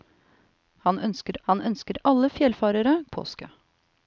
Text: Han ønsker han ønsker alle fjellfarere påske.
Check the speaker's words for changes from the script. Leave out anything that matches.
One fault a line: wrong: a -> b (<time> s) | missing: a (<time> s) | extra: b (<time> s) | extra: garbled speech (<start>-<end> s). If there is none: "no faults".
no faults